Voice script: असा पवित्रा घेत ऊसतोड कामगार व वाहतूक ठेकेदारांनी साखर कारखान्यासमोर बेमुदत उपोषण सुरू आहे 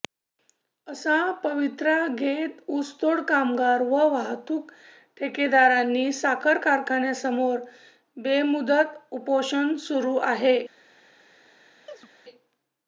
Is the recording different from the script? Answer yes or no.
no